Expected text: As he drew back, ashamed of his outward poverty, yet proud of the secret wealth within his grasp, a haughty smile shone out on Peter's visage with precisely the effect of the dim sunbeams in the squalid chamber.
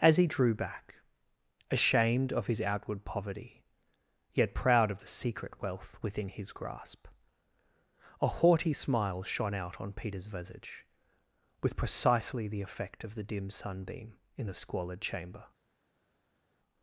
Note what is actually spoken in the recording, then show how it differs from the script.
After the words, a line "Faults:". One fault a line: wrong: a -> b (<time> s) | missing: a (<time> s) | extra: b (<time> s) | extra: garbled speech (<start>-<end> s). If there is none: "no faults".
As he drew back, ashamed of his outward poverty, yet proud of the secret wealth within his grasp, a haughty smile shone out on Peter's visage with precisely the effect of the dim sunbeam in the squalid chamber.
Faults:
wrong: sunbeams -> sunbeam (13.5 s)